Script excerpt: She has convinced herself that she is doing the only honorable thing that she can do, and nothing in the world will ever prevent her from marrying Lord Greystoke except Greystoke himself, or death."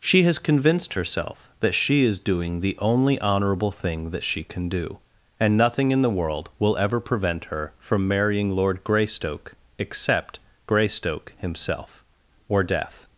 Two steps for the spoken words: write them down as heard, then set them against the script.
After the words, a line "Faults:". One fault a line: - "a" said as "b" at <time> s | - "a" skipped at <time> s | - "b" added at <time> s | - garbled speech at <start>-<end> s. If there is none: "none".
She has convinced herself that she is doing the only honorable thing that she can do, and nothing in the world will ever prevent her from marrying Lord Greystoke except Greystoke himself, or death."
Faults:
none